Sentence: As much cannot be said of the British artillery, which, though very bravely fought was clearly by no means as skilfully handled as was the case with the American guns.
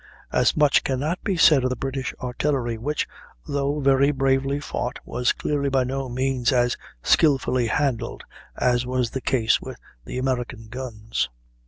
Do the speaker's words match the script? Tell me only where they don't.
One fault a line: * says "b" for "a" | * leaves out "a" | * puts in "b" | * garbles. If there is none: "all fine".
all fine